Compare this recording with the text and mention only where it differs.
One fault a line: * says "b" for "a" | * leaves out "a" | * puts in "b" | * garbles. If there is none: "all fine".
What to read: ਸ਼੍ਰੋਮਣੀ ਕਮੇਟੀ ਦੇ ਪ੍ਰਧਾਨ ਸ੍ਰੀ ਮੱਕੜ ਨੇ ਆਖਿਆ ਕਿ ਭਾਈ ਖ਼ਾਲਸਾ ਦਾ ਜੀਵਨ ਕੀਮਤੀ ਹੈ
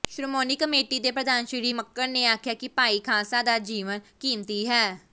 all fine